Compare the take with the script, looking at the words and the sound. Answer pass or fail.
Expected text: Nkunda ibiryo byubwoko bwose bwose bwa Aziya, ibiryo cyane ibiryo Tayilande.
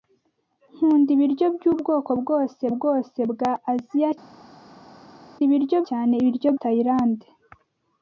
pass